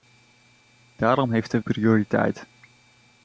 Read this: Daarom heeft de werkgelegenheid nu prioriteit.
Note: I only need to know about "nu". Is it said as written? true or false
false